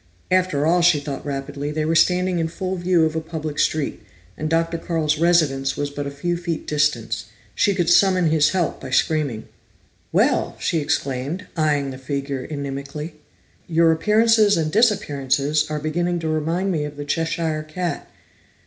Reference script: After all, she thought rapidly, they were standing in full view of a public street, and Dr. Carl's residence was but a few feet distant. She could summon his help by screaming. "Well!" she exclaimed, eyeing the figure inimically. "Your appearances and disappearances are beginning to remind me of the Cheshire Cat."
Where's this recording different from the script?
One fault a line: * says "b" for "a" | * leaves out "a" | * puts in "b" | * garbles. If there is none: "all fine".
all fine